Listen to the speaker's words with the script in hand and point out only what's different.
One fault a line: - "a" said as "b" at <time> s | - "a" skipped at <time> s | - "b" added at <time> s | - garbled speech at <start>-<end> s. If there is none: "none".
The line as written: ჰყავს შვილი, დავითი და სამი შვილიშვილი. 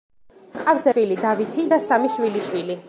none